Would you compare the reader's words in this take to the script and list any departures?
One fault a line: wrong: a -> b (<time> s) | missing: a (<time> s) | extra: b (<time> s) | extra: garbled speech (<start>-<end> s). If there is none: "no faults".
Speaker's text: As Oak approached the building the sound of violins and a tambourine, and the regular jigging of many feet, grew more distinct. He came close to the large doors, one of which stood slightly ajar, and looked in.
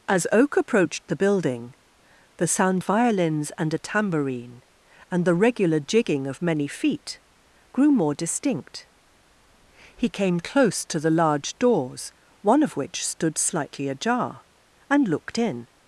missing: of (2.8 s)